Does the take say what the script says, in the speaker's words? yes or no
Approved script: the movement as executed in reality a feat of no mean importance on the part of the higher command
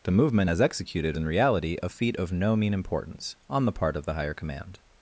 yes